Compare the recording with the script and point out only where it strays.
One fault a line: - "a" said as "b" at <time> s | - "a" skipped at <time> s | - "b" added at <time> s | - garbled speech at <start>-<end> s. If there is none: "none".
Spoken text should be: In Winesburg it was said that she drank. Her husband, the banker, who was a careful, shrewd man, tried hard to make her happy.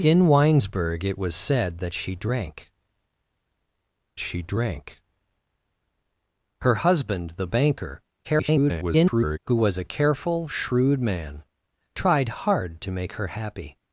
- "she drank" added at 4.2 s
- garbled speech at 8.2-9.4 s